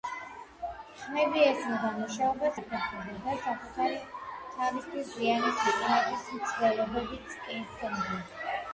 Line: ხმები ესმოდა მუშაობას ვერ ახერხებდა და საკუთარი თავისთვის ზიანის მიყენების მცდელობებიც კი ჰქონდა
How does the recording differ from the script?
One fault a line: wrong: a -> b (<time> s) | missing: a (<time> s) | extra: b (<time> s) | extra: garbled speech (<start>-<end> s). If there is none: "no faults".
missing: ვერ (2.5 s)